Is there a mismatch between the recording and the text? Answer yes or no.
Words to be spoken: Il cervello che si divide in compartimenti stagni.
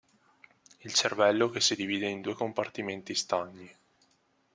yes